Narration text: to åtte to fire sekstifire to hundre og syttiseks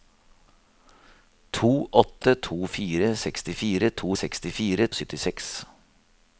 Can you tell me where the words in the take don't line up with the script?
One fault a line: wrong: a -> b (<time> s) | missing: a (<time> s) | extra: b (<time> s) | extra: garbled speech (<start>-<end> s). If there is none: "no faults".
wrong: hundre -> sekstifire (4.2 s)